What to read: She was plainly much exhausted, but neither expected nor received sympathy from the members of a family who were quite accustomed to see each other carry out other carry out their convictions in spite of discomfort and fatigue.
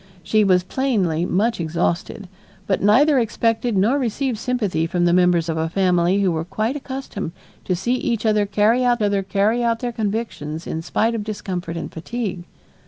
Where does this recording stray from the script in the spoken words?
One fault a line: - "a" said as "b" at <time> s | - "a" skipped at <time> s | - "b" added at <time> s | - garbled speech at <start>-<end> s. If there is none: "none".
none